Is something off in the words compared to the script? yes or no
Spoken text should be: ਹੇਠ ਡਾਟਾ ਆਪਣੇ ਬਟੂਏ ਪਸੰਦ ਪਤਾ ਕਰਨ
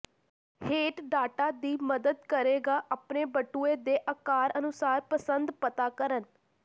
yes